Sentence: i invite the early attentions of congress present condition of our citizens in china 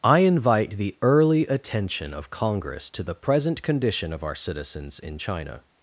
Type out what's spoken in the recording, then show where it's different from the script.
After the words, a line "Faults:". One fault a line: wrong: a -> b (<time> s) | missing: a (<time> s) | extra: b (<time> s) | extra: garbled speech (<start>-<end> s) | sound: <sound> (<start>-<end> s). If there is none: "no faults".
i invite the early attention of congress to the present condition of our citizens in china
Faults:
wrong: attentions -> attention (1.4 s)
extra: to the (2.9 s)